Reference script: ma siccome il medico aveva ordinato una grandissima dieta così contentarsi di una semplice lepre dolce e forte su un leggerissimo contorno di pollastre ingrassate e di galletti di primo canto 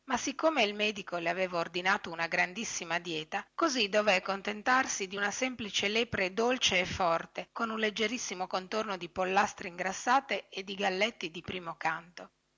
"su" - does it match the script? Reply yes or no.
no